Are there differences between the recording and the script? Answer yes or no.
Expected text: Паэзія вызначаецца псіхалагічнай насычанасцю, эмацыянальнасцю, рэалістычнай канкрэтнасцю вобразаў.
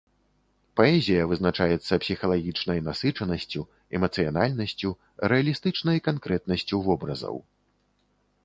no